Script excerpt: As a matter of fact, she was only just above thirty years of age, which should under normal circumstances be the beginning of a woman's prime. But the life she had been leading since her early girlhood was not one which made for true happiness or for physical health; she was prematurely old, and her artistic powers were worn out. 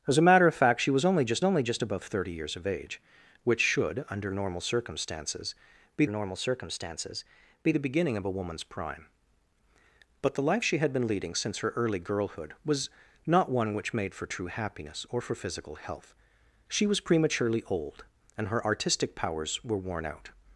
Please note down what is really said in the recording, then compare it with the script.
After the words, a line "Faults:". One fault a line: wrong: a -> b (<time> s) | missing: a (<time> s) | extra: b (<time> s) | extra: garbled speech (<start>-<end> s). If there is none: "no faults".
As a matter of fact, she was only just only just above thirty years of age, which should under normal circumstances be normal circumstances be the beginning of a woman's prime. But the life she had been leading since her early girlhood was not one which made for true happiness or for physical health; she was prematurely old, and her artistic powers were worn out.
Faults:
extra: only just (1.4 s)
extra: normal circumstances be (6.1 s)